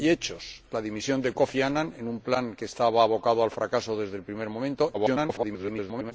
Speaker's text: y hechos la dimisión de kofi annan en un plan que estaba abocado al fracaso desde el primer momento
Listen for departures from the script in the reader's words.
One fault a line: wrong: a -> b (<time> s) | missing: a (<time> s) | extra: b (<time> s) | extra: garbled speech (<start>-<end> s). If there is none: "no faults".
extra: garbled speech (4.9-6.1 s)